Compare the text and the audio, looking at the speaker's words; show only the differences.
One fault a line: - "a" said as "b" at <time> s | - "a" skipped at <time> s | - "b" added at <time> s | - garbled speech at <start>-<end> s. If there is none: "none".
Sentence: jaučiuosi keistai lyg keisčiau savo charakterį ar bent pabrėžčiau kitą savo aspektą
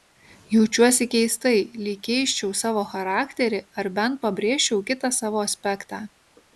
none